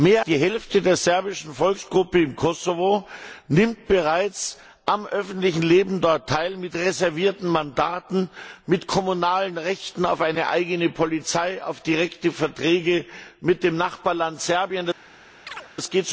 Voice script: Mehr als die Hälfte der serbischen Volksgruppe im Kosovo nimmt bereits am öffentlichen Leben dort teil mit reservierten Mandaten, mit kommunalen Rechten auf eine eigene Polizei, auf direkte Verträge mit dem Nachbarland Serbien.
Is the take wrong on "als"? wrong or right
wrong